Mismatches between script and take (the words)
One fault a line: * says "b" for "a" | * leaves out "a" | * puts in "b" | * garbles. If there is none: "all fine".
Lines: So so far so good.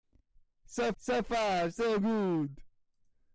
all fine